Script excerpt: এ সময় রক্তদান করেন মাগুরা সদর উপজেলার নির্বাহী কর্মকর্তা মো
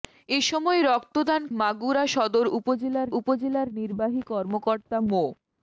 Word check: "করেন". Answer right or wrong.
wrong